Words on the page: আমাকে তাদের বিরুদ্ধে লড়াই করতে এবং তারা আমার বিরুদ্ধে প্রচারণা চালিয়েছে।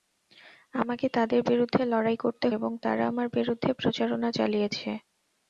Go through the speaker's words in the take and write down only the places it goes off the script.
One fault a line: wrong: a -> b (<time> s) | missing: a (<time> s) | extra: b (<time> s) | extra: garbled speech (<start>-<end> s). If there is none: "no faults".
no faults